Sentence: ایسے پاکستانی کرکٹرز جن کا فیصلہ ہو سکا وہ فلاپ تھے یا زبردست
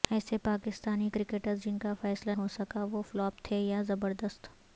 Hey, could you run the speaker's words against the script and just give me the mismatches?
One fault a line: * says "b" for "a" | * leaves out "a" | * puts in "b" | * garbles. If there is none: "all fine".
all fine